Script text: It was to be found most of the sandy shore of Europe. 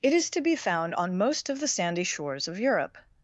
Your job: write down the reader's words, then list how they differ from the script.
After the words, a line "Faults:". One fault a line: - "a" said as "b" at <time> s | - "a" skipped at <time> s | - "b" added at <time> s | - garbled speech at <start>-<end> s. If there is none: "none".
It is to be found on most of the sandy shores of Europe.
Faults:
- "was" said as "is" at 0.1 s
- "on" added at 0.9 s
- "shore" said as "shores" at 2.0 s